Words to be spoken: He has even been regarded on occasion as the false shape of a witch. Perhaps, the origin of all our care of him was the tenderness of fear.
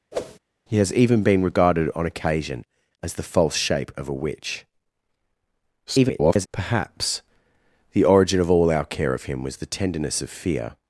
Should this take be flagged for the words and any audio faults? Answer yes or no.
yes